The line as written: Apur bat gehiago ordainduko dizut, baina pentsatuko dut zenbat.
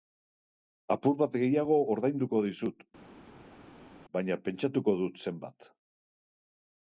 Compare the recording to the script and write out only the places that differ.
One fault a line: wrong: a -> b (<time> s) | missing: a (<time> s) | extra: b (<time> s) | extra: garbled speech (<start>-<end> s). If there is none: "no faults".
no faults